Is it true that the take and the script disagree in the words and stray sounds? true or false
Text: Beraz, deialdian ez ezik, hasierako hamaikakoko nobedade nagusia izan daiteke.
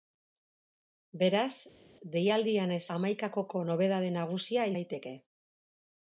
true